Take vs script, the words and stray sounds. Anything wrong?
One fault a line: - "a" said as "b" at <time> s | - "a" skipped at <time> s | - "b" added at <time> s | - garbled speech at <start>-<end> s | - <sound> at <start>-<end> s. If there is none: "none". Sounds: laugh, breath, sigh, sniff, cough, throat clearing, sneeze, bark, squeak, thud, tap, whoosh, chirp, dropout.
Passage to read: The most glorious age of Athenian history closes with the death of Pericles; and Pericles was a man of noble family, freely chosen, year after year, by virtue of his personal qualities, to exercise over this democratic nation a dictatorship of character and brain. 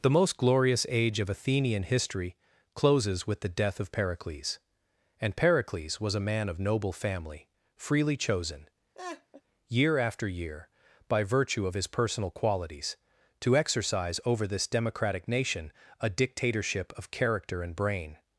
- laugh at 8.9-9.4 s